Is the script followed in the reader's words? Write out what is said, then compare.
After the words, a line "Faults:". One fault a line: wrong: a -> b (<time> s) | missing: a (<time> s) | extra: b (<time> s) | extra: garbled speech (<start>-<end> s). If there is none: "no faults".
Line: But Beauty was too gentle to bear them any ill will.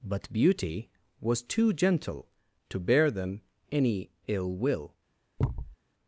But Beauty was too gentle to bear them any ill will.
Faults:
no faults